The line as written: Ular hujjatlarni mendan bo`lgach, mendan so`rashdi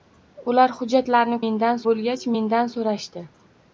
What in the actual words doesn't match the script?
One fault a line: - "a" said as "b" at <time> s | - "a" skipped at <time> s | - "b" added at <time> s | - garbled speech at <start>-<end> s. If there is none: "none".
none